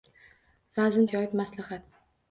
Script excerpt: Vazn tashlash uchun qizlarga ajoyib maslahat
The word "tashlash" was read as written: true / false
false